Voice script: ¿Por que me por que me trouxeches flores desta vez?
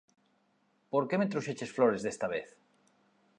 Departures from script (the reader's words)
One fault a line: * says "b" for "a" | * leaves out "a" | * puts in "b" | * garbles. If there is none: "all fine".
* leaves out "por que me"